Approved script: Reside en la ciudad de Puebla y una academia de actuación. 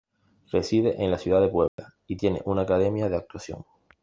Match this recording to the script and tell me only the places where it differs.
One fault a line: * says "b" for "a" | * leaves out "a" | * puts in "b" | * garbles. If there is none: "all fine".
* puts in "tiene"